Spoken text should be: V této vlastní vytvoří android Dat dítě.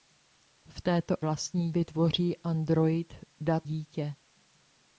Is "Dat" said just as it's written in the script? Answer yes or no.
yes